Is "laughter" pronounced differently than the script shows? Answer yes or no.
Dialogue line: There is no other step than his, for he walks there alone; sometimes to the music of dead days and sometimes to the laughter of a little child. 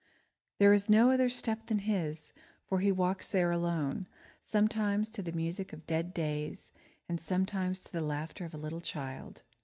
no